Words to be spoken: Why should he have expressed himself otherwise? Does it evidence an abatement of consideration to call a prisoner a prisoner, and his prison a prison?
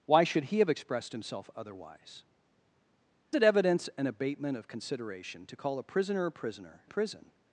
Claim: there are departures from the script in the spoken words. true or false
true